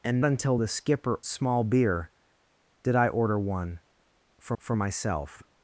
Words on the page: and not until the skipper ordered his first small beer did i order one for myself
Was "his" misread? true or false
true